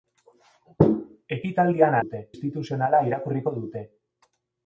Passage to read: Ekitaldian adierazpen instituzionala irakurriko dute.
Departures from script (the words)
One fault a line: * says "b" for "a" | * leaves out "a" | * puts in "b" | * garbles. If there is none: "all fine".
* says "dute" for "adierazpen"